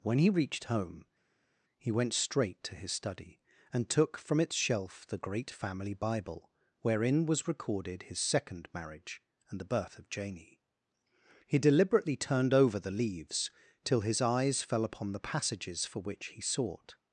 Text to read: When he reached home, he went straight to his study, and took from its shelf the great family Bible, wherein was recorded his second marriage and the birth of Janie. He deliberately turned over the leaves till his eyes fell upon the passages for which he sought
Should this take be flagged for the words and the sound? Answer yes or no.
no